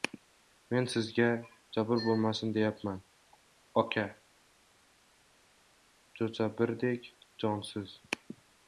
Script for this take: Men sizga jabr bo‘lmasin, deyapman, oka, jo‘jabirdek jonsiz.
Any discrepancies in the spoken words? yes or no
no